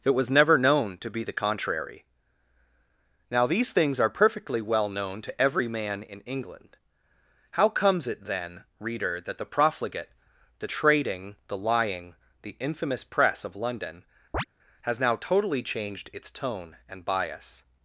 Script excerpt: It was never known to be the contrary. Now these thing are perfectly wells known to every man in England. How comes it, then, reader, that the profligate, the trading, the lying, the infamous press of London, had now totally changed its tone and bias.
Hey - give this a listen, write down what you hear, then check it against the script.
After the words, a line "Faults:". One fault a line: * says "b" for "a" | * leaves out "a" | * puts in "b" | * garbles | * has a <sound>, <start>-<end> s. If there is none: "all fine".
It was never known to be the contrary. Now these things are perfectly well known to every man in England. How comes it, then, reader, that the profligate, the trading, the lying, the infamous press of London, has now totally changed its tone and bias.
Faults:
* says "things" for "thing"
* says "well" for "wells"
* has a chirp, 14.3-14.5 s
* says "has" for "had"